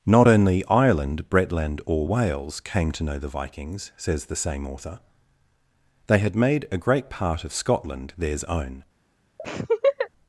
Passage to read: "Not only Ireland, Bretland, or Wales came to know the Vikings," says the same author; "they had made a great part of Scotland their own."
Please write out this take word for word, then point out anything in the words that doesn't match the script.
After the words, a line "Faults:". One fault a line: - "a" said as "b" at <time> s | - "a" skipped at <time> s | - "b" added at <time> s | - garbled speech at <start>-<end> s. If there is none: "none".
"Not only Ireland, Bretland, or Wales came to know the Vikings," says the same author; "they had made a great part of Scotland theirs own."
Faults:
- "their" said as "theirs" at 8.2 s